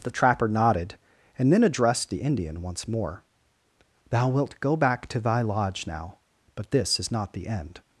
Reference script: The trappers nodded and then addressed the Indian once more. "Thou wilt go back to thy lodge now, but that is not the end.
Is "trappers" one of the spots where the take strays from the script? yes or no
yes